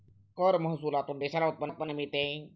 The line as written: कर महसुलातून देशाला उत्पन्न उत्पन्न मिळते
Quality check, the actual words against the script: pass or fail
pass